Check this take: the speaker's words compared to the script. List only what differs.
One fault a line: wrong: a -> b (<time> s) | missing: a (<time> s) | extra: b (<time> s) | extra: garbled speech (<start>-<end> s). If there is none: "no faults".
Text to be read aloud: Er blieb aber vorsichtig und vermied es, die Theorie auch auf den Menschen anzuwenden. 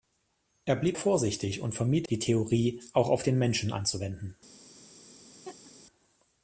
missing: aber (1.0 s)
missing: es (2.1 s)